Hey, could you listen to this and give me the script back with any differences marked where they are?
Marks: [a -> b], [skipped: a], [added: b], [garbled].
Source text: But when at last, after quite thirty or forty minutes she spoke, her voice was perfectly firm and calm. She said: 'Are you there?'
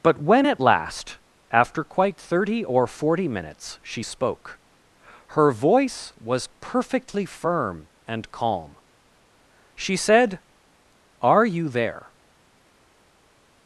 But when at last, after quite thirty or forty minutes she spoke, her voice was perfectly firm and calm. She said: 'Are you there?'